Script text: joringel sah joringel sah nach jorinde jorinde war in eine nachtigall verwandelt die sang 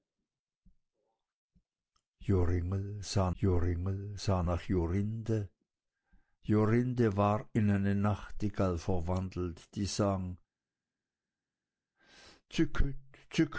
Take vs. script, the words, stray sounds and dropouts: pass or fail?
pass